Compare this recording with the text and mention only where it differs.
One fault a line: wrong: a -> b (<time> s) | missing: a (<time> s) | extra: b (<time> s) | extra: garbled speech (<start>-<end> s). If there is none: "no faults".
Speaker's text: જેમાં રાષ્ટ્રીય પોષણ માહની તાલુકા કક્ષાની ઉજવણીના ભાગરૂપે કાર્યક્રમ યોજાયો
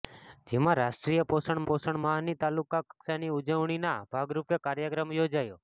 extra: પોષણ (1.7 s)